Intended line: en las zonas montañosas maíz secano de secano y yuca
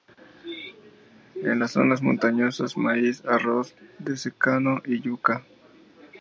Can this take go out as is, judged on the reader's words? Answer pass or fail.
fail